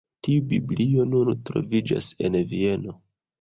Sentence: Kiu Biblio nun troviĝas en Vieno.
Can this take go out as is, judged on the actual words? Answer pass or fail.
fail